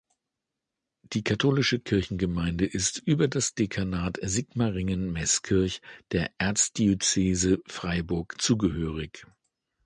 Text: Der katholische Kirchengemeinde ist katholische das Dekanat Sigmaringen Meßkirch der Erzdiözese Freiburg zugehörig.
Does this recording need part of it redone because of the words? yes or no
yes